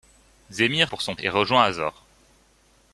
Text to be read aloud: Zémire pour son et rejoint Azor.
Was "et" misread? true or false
false